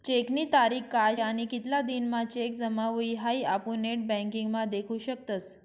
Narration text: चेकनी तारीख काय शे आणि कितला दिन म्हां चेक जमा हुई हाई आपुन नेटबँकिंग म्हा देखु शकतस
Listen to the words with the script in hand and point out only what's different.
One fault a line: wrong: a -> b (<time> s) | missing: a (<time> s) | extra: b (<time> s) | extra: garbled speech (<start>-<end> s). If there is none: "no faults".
missing: शे (1.1 s)